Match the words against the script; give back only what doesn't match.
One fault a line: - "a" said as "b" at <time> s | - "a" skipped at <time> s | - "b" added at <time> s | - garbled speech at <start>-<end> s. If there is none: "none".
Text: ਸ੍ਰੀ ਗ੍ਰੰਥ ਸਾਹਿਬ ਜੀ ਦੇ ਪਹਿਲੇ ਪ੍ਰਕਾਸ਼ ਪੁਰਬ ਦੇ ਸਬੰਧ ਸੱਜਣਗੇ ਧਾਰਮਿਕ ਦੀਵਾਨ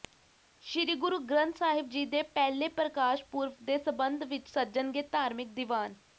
- "ਗੁਰੂ" added at 0.9 s
- "ਵਿੱਚ" added at 4.2 s